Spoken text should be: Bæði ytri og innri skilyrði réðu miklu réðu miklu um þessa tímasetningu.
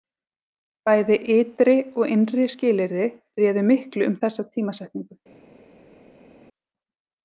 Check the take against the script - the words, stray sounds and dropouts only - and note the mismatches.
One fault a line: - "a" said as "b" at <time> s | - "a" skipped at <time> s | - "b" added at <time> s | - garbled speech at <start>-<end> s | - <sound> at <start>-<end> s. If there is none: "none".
- "réðu miklu" skipped at 4.1 s